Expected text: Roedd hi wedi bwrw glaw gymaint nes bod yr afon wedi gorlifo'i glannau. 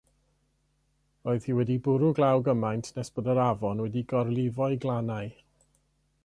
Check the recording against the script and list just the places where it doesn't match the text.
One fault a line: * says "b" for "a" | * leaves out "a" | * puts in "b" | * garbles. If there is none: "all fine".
all fine